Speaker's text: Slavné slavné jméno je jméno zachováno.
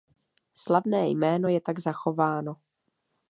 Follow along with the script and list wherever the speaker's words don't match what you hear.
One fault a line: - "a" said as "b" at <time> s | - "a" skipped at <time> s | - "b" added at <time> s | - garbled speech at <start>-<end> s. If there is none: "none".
- "slavné" skipped at 1.1 s
- "jméno" said as "tak" at 1.6 s